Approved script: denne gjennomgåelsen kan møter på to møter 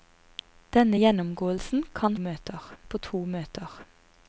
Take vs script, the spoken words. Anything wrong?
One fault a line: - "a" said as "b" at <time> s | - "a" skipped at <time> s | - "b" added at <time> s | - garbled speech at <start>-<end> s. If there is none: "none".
none